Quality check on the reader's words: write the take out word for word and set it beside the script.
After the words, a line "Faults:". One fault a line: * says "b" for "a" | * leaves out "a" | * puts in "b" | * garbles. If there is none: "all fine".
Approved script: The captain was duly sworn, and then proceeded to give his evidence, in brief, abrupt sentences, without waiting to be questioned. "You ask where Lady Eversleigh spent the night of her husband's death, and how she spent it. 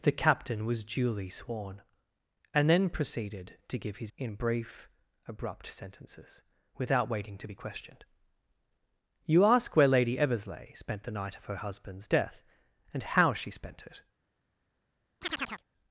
The captain was duly sworn, and then proceeded to give his in brief, abrupt sentences, without waiting to be questioned. "You ask where Lady Eversleigh spent the night of her husband's death, and how she spent it.
Faults:
* leaves out "evidence"